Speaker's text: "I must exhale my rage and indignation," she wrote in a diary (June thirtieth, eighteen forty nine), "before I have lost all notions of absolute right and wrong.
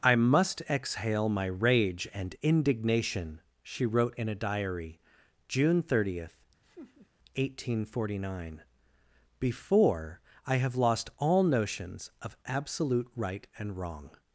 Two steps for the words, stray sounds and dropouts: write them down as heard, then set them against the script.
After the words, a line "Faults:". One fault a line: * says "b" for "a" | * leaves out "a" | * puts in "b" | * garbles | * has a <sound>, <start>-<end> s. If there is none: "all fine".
"I must exhale my rage and indignation," she wrote in a diary (June thirtieth, eighteen forty nine), "before I have lost all notions of absolute right and wrong.
Faults:
* has a laugh, 6.6-7.1 s